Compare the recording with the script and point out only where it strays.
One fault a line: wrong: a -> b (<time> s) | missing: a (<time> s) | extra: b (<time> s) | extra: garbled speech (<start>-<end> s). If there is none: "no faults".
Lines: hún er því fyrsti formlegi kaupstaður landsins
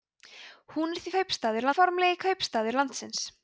wrong: fyrsti -> kaupstaður (1.2 s)